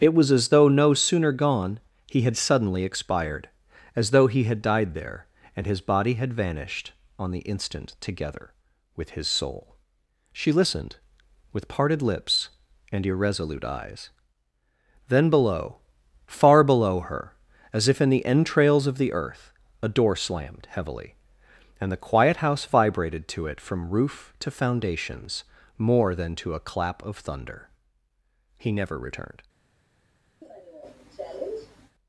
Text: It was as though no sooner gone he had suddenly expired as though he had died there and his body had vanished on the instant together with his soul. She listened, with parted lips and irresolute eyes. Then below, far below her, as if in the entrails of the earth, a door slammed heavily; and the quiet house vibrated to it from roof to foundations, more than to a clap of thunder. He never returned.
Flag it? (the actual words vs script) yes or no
no